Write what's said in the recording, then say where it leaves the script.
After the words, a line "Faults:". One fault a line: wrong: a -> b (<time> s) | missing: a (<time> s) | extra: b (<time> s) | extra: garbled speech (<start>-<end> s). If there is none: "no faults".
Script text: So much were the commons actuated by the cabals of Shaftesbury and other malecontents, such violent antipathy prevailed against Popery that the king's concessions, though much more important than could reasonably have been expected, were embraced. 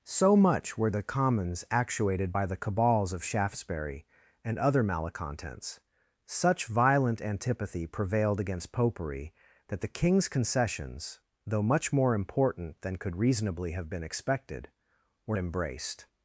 So much were the commons actuated by the cabals of Shaftesbury and other malecontents, such violent antipathy prevailed against Popery that the king's concessions, though much more important than could reasonably have been expected, were embraced.
Faults:
no faults